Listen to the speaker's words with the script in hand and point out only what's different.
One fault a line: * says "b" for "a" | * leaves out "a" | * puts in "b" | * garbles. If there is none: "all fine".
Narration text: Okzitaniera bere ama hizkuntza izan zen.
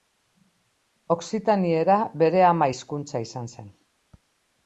all fine